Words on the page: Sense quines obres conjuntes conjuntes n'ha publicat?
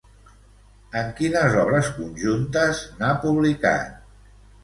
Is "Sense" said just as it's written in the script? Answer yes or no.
no